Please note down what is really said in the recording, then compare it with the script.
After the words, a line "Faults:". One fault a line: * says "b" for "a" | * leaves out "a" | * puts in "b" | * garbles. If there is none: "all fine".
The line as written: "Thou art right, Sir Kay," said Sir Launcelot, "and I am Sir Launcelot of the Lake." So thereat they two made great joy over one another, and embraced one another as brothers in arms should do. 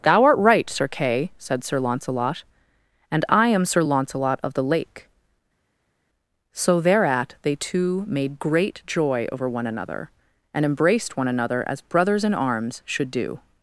"Thou art right, Sir Kay," said Sir Launcelot, "and I am Sir Launcelot of the Lake." So thereat they two made great joy over one another, and embraced one another as brothers in arms should do.
Faults:
all fine